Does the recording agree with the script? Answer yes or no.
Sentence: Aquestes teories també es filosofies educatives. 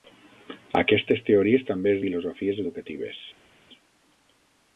yes